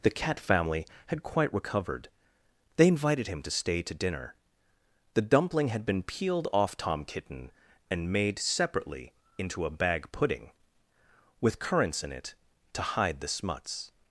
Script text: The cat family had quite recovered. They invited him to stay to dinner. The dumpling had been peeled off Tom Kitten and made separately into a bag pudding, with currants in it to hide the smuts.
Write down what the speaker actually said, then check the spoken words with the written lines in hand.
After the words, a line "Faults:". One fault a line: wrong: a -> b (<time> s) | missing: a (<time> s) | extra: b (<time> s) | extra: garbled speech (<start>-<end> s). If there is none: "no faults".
The cat family had quite recovered. They invited him to stay to dinner. The dumpling had been peeled off Tom Kitten and made separately into a bag pudding, with currants in it to hide the smuts.
Faults:
no faults